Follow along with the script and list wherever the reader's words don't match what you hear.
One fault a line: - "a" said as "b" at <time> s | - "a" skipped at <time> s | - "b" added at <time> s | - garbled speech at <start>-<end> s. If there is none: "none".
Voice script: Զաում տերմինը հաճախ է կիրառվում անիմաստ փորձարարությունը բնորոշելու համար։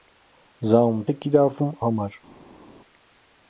- "տերմինը հաճախ" skipped at 1.0 s
- "անիմաստ փորձարարությունը բնորոշելու" skipped at 1.7 s